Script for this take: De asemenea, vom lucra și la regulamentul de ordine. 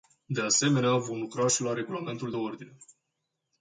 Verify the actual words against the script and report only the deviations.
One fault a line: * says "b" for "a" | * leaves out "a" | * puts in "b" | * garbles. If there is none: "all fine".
all fine